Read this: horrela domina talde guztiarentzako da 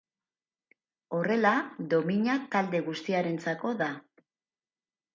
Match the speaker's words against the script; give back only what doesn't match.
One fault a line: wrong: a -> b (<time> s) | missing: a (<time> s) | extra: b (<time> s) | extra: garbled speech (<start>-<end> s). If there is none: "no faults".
no faults